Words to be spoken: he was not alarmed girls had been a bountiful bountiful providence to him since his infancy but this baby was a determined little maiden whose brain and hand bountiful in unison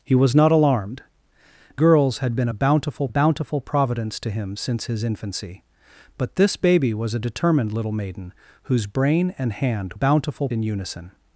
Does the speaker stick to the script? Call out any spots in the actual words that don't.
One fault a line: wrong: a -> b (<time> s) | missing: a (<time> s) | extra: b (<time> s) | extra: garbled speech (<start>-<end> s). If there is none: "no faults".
no faults